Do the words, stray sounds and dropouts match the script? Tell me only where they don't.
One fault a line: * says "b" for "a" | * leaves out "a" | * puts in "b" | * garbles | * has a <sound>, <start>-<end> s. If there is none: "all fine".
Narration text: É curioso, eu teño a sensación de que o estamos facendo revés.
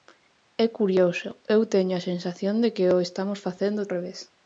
all fine